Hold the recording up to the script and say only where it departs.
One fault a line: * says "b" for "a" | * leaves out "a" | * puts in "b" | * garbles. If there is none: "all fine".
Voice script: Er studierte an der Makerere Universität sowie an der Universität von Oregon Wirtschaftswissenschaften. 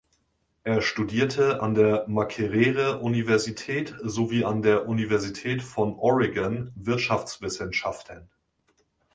all fine